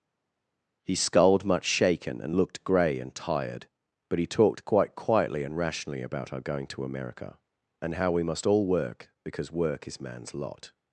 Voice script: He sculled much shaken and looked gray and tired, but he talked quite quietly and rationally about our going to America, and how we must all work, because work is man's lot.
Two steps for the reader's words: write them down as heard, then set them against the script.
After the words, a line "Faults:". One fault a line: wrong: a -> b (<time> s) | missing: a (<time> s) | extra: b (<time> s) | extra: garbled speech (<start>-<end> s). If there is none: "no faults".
He sculled much shaken and looked gray and tired, but he talked quite quietly and rationally about our going to America, and how we must all work, because work is man's lot.
Faults:
no faults